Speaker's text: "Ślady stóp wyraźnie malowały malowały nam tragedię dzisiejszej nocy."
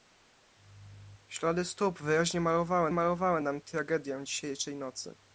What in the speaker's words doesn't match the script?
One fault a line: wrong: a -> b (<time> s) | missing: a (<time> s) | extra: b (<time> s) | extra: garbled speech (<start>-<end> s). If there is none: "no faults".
no faults